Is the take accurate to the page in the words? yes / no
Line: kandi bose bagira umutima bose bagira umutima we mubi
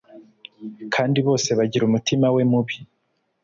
no